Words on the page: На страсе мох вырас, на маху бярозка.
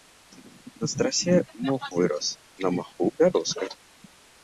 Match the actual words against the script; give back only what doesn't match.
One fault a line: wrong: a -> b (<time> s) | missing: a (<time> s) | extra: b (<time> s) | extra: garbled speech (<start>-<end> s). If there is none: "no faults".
no faults